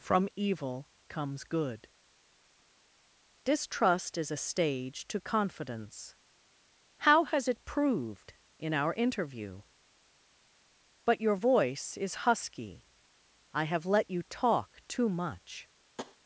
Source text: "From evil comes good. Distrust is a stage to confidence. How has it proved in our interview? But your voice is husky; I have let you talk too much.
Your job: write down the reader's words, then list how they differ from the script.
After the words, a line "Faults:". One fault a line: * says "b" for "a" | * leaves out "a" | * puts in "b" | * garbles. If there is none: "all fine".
"From evil comes good. Distrust is a stage to confidence. How has it proved in our interview? But your voice is husky; I have let you talk too much.
Faults:
all fine